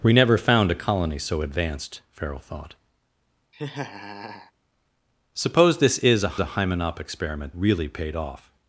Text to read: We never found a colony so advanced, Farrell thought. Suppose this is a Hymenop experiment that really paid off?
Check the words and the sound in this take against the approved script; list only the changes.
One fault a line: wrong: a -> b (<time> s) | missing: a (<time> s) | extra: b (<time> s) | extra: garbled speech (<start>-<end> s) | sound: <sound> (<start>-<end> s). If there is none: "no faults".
sound: laugh (3.5-4.5 s)
extra: a (6.4 s)
missing: that (7.5 s)